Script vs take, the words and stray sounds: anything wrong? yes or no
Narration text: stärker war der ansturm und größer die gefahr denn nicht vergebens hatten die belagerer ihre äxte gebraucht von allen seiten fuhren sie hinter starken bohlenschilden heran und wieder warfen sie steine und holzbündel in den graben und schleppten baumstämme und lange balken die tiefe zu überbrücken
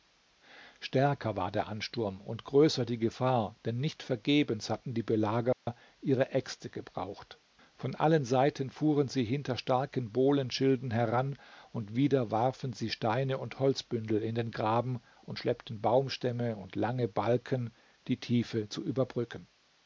yes